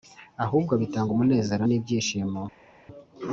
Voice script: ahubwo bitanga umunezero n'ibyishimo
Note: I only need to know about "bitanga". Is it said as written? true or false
true